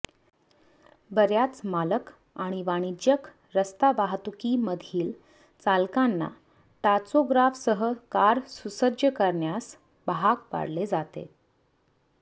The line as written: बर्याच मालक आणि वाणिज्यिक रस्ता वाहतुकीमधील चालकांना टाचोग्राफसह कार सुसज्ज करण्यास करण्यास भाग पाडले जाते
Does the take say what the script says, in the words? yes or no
no